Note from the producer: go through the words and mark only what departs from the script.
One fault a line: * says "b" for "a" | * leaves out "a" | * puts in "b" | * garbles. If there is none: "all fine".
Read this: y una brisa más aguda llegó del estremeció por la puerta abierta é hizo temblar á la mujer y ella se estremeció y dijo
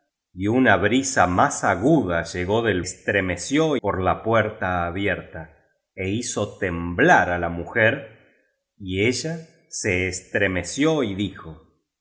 all fine